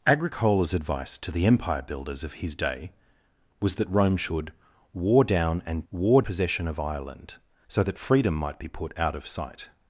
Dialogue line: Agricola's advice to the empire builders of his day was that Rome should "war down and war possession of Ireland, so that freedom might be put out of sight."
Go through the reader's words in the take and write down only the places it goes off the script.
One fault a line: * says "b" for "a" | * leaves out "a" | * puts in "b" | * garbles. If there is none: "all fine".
all fine